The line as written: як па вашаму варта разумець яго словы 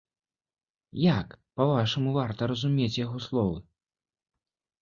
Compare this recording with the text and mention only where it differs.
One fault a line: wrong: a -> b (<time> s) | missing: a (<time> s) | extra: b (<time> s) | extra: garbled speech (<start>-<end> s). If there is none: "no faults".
no faults